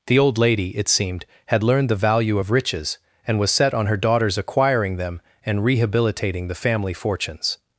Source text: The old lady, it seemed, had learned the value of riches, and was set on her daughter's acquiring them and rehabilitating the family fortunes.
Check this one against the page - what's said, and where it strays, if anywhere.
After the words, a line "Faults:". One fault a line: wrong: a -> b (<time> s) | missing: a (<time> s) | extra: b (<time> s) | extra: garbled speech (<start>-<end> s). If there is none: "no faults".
The old lady, it seemed, had learned the value of riches, and was set on her daughter's acquiring them and rehabilitating the family fortunes.
Faults:
no faults